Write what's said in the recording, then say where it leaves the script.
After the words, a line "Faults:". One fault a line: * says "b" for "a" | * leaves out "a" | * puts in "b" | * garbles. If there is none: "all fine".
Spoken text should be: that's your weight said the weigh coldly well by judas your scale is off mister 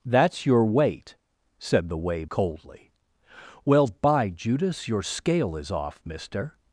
that's your weight said the weigh coldly well by judas your scale is off mister
Faults:
all fine